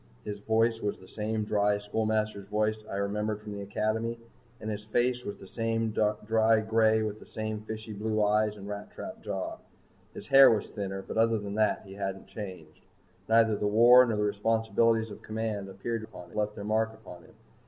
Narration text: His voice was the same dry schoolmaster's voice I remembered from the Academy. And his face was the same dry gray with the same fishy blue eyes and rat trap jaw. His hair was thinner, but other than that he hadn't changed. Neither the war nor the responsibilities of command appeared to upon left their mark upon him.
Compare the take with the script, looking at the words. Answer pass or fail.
pass